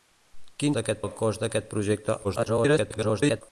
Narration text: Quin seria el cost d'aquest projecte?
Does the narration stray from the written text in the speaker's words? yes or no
yes